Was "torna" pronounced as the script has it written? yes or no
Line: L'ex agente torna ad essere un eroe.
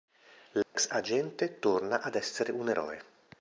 yes